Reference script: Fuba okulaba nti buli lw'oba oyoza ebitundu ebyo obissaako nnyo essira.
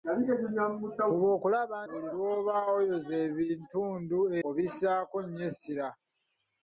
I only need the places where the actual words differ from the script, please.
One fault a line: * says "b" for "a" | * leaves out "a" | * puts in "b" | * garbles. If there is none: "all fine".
* leaves out "nti"
* leaves out "ebyo"